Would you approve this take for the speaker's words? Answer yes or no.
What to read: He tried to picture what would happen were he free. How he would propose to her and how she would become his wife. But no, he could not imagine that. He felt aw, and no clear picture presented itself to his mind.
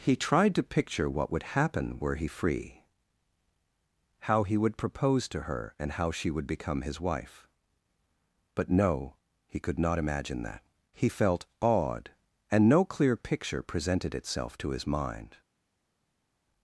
no